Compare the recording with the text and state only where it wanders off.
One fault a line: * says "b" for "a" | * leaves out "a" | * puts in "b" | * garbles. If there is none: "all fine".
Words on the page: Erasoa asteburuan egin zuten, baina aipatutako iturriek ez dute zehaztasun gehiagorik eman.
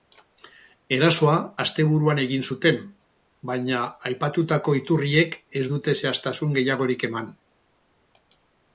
all fine